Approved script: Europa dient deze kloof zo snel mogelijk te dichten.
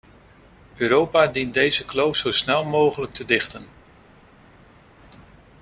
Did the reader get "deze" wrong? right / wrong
right